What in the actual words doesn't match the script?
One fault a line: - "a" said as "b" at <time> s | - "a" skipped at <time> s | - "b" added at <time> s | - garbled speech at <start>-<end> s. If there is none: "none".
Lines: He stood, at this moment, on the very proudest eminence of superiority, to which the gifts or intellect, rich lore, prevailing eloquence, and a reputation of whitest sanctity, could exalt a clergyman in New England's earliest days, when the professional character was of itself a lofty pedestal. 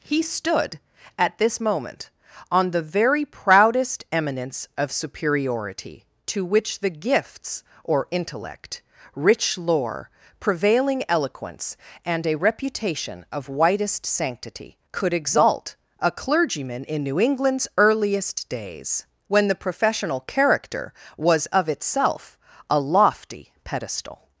none